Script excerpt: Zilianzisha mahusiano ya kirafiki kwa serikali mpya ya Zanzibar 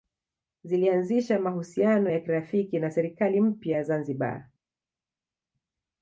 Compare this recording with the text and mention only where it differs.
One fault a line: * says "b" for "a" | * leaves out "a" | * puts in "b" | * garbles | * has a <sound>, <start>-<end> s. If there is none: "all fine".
* says "na" for "kwa"